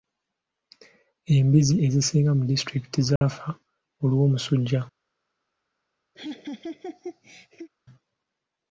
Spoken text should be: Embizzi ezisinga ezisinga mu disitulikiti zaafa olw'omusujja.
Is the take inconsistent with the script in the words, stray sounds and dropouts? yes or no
yes